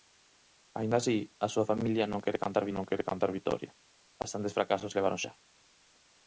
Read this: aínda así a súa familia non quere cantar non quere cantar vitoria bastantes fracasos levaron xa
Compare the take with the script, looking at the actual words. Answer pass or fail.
pass